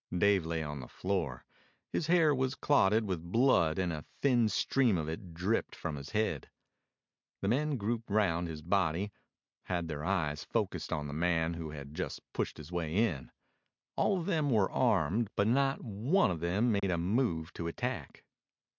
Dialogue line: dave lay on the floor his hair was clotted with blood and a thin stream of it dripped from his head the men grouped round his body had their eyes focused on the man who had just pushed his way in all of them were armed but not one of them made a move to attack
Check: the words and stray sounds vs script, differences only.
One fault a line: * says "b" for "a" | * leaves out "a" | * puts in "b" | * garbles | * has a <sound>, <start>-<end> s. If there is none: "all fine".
* has a dropout, 16.8-16.8 s